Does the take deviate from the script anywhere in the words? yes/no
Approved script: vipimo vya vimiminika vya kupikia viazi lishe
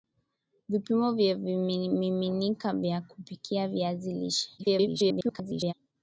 yes